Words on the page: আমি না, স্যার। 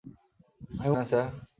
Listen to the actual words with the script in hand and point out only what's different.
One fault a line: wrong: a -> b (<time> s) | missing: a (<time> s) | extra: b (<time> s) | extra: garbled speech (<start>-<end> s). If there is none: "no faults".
no faults